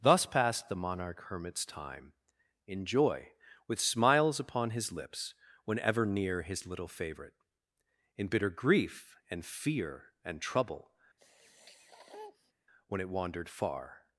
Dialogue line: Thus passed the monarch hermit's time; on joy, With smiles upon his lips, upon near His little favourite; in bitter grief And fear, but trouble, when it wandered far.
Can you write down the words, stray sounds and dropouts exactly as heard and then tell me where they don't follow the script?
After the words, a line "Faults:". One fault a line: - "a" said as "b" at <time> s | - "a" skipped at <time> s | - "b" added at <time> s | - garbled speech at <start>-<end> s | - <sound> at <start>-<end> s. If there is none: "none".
Thus passed the monarch hermit's time; in joy, With smiles upon his lips, whenever near His little favourite; in bitter grief And fear, and trouble, when it wandered far.
Faults:
- "on" said as "in" at 2.6 s
- "upon" said as "whenever" at 5.7 s
- "but" said as "and" at 10.2 s
- sniff at 11.2-12.5 s